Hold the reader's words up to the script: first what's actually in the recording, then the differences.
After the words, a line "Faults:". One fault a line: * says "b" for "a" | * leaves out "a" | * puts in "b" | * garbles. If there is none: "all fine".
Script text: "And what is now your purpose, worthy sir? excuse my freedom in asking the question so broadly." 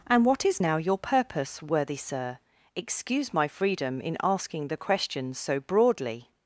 "And what is now your purpose, worthy sir? excuse my freedom in asking the question so broadly."
Faults:
all fine